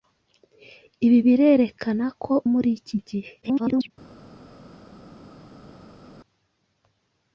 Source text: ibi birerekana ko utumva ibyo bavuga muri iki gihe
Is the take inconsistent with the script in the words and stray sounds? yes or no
yes